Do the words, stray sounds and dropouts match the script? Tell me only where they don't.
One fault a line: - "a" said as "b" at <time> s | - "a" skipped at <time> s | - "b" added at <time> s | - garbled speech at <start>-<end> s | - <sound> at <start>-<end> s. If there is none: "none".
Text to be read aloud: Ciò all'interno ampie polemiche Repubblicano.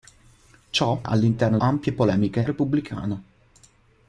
none